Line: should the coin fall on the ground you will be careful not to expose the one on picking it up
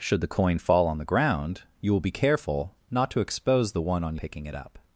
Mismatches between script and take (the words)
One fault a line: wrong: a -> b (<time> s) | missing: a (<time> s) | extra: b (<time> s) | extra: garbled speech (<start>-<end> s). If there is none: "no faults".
no faults